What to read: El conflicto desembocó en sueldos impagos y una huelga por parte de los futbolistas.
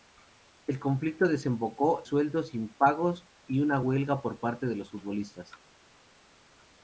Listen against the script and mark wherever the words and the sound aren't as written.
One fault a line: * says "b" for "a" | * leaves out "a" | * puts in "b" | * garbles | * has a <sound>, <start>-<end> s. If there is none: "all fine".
* leaves out "en"